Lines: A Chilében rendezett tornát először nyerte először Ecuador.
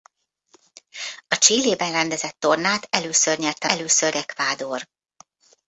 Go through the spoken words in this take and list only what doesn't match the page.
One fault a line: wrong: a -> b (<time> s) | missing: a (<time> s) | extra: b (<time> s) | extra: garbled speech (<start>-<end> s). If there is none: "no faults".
no faults